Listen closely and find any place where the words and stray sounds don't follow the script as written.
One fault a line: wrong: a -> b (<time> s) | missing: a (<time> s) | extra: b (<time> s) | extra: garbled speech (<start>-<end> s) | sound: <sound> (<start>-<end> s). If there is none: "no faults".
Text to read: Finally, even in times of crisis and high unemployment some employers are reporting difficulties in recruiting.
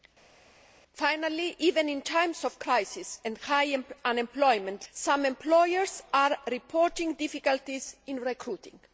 no faults